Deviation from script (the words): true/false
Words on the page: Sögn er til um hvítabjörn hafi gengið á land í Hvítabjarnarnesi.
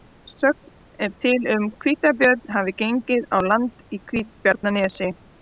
false